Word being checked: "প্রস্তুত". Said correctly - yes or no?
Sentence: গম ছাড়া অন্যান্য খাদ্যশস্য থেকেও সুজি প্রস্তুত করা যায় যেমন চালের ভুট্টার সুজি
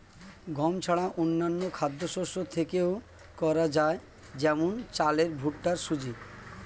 no